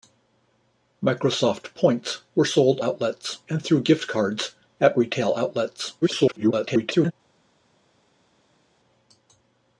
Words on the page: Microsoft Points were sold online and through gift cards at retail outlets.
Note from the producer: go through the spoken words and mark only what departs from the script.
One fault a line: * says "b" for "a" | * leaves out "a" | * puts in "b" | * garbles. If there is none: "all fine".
* says "outlets" for "online"
* garbles